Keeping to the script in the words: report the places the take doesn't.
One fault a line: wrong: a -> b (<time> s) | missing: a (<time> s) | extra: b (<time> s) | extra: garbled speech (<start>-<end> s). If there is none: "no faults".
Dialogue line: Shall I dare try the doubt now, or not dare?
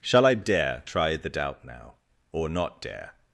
no faults